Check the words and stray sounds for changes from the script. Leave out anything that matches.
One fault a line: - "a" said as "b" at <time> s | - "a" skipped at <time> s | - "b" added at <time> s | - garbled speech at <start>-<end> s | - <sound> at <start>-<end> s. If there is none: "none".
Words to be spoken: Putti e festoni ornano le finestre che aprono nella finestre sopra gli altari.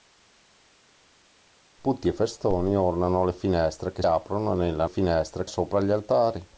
none